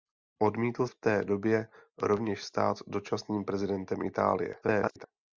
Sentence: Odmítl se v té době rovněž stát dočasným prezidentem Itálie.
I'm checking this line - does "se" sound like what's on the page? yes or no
no